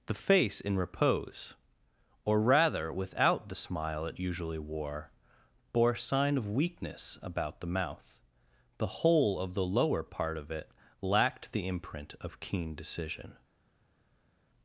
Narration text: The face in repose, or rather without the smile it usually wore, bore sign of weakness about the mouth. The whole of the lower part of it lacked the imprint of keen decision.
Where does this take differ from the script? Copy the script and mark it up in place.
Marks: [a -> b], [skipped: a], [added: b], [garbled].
The face in repose, or rather without the smile it usually wore, bore sign of weakness about the mouth. The whole of the lower part of it lacked the imprint of keen decision.